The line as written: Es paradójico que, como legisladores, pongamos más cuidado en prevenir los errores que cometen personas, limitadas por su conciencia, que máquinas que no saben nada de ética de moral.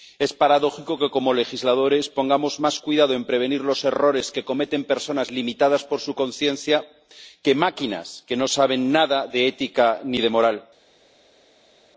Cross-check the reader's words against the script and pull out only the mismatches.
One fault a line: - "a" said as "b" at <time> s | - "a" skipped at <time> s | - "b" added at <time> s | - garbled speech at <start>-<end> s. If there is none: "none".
- "ni" added at 10.0 s